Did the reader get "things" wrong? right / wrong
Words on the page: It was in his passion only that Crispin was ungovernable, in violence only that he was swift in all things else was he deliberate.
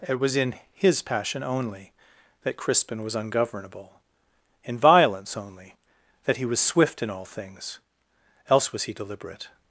right